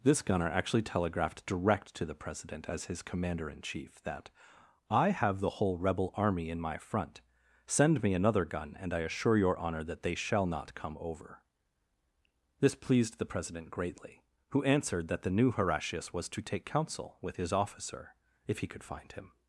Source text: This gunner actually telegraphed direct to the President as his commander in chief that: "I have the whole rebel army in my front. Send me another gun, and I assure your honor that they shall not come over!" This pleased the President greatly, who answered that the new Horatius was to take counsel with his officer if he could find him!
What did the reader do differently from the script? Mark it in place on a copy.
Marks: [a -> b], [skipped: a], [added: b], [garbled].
This gunner actually telegraphed direct to the President as his commander in chief that: "I have the whole rebel army in my front. Send me another gun, and I assure your honor that they shall not come over!" This pleased the President greatly, who answered that the new Horatius was to take counsel with his officer if he could find him!